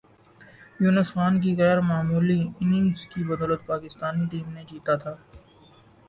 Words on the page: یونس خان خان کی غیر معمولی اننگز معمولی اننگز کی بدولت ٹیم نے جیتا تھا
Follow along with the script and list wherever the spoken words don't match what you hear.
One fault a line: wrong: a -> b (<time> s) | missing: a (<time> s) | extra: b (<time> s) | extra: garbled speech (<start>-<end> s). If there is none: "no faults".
missing: خان (1.3 s)
missing: معمولی اننگز (3.0 s)
extra: پاکستانی (3.7 s)